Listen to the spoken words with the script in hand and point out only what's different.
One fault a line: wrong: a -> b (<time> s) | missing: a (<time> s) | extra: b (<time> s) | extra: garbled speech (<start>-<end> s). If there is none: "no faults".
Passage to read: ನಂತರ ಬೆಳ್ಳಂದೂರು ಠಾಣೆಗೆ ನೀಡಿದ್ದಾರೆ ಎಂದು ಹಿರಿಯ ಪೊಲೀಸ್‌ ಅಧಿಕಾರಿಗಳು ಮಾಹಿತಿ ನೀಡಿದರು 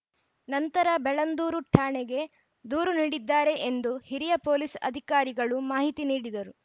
extra: ದೂರು (2.6 s)